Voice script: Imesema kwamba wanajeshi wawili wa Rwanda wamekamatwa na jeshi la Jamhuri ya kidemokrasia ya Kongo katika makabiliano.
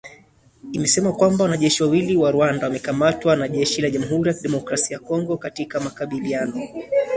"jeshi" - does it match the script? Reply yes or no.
yes